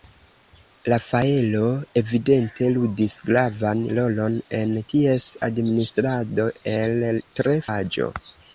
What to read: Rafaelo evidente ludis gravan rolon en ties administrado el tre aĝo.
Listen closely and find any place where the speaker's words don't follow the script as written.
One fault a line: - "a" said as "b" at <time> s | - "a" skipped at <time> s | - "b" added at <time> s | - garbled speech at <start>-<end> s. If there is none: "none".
none